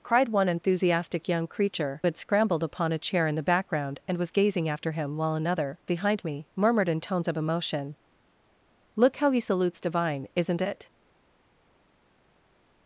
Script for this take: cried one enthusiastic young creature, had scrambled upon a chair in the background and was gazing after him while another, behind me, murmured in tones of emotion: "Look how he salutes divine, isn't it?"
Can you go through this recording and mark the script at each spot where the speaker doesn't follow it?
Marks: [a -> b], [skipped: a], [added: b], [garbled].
cried one enthusiastic young creature, had scrambled upon a chair in the background and was gazing after him while another, behind me, murmured in tones of emotion: "Look how he salutes divine, isn't it?"